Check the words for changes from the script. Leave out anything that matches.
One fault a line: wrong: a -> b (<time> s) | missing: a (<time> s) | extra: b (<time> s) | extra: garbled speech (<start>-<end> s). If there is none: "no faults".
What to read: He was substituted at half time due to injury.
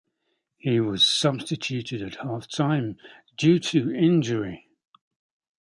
no faults